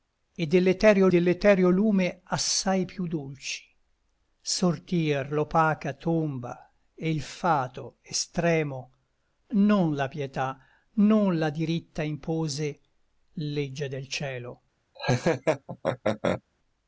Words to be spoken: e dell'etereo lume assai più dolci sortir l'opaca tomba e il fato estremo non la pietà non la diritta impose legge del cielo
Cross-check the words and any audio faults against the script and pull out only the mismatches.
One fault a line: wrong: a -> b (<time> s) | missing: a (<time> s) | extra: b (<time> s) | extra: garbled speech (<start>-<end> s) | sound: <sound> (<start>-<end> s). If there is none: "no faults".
extra: dell'etereo (1.1 s)
sound: laugh (15.0-16.4 s)